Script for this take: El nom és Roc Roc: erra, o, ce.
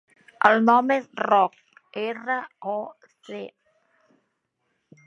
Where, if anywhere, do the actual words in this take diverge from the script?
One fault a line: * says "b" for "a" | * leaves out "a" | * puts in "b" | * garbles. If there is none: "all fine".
* leaves out "Roc"